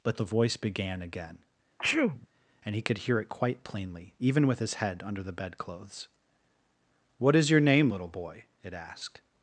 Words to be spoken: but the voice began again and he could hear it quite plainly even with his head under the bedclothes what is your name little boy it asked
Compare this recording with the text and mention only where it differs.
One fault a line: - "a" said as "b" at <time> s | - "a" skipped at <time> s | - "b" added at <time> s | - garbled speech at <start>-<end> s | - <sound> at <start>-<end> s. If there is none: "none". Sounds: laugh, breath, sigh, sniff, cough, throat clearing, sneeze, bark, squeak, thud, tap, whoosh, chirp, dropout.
- sneeze at 1.8-2.3 s